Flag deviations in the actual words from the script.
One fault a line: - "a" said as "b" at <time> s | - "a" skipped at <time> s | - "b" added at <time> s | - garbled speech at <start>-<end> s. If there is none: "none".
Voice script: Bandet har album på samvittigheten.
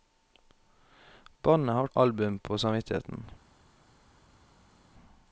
none